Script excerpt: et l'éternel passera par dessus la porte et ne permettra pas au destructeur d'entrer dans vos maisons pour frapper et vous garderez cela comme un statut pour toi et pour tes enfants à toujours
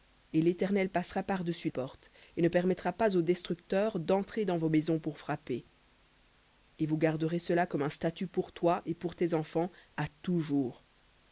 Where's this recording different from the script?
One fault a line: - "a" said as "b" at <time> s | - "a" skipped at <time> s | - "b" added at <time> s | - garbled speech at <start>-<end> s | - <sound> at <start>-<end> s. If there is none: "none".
- "la" skipped at 1.7 s